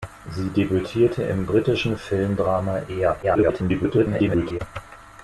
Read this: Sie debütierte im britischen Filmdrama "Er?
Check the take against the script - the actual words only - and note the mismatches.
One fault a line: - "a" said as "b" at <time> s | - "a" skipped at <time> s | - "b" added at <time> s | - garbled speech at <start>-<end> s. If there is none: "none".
- garbled speech at 3.2-4.6 s